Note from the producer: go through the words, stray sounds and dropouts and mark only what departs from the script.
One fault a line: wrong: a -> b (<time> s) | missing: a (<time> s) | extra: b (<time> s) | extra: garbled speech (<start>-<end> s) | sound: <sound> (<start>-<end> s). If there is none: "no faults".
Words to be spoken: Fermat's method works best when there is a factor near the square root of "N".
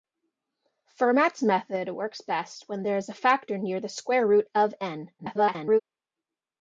extra: garbled speech (5.2-5.8 s)